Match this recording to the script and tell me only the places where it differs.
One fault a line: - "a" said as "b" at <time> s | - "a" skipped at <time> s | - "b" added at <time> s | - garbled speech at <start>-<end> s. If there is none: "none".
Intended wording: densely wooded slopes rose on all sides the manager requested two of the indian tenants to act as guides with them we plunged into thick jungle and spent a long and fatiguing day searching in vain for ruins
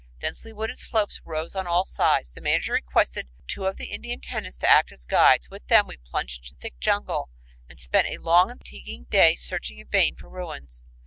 none